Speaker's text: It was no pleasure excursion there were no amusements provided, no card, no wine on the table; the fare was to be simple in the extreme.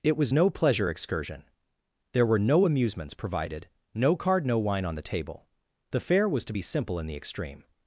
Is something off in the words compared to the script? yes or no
no